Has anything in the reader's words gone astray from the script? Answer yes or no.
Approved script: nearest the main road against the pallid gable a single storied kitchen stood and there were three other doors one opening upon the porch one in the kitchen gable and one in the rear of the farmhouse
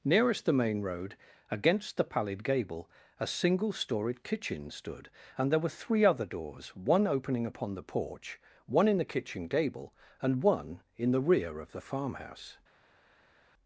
no